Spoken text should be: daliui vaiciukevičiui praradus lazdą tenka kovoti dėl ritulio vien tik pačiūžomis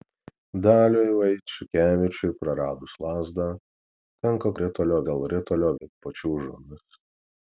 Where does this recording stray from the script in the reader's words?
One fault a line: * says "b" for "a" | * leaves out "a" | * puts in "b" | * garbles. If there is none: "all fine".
* says "ritulio" for "kovoti"
* leaves out "vien"